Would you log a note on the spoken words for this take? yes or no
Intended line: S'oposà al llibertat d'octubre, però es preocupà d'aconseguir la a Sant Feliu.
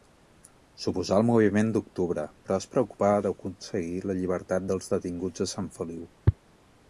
yes